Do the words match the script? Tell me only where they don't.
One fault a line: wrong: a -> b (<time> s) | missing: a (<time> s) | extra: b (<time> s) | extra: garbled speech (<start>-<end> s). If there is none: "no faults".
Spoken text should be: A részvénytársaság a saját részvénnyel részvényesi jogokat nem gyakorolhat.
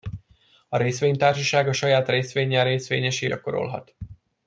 missing: jogokat nem (3.3 s)